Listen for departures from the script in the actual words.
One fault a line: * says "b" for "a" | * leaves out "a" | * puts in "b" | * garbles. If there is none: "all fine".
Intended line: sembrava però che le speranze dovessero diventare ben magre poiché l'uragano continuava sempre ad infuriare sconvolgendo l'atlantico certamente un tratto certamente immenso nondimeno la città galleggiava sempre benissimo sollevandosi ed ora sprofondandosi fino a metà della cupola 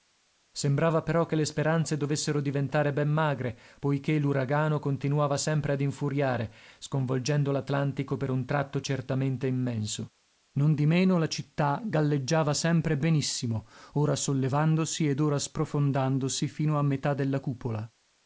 * says "per" for "certamente"
* puts in "ora"